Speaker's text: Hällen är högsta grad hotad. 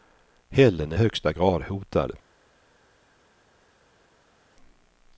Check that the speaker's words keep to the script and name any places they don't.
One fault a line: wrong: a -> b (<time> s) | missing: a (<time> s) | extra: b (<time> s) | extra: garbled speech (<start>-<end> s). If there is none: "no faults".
no faults